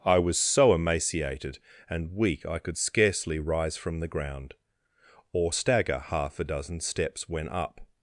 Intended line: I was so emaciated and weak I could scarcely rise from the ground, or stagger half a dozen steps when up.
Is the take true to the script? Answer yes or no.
yes